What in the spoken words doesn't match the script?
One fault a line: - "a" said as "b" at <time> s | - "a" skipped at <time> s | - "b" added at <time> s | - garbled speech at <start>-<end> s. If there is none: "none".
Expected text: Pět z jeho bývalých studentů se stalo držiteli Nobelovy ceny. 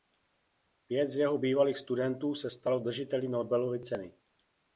none